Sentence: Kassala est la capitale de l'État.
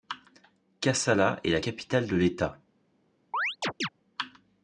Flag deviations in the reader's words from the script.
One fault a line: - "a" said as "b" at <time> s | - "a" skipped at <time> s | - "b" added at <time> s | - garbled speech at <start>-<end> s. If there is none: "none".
none